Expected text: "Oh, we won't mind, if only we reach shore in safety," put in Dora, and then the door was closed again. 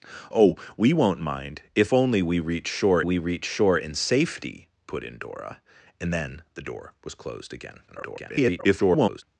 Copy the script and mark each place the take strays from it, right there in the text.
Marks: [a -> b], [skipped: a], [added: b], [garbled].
"Oh, we won't mind, if only we reach shore [added: we reach shore] in safety," put in Dora, and then the door was closed again. [garbled]